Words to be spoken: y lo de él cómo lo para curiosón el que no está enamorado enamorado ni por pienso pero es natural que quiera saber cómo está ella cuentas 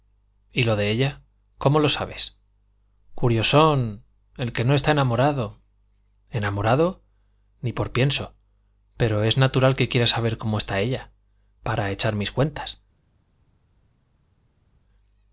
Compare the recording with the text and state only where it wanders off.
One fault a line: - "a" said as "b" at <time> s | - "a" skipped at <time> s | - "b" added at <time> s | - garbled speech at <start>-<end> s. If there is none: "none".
- "él" said as "ella" at 0.9 s
- "para" said as "sabes" at 1.9 s
- "para echar mis" added at 11.6 s